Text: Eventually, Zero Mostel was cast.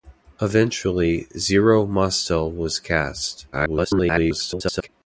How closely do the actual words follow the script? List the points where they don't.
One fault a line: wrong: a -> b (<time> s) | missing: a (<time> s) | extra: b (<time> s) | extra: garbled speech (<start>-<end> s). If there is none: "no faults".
extra: garbled speech (3.5-4.9 s)